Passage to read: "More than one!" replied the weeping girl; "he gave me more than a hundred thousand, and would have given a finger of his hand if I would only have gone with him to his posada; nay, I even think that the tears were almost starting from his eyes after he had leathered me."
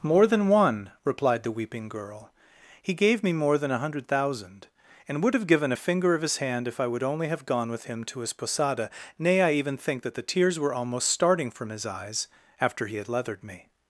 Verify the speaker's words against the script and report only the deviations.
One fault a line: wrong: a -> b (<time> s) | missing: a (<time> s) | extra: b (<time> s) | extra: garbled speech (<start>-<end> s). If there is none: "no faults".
no faults